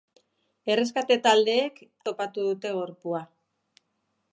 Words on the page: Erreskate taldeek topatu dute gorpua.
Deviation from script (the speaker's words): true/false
false